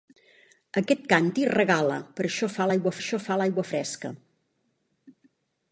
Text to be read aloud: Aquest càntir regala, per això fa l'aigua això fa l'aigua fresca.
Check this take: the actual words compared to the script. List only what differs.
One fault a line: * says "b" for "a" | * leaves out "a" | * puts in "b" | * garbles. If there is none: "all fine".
all fine